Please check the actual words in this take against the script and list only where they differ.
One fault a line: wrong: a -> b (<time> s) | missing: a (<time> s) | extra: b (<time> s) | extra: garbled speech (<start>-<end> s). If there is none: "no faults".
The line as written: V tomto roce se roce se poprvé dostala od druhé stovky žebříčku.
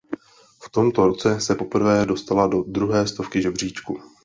missing: roce se (1.6 s)
wrong: od -> do (2.5 s)